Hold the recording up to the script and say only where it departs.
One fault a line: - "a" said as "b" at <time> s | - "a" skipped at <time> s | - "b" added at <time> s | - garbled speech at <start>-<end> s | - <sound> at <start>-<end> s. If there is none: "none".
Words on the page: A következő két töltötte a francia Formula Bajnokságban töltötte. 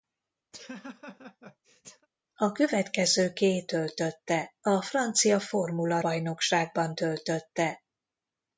- laugh at 0.5-2.1 s